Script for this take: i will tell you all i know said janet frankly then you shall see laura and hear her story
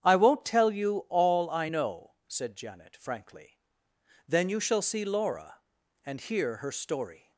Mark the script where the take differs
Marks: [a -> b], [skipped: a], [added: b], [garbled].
i [will -> won't] tell you all i know said janet frankly then you shall see laura and hear her story